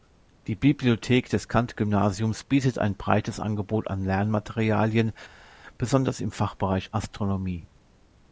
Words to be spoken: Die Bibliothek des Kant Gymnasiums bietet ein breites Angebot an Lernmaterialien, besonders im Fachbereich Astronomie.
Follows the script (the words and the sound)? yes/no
yes